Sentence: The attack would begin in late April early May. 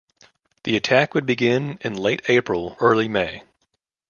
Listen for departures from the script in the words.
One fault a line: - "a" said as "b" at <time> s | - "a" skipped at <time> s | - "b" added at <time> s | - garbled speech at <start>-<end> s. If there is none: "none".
none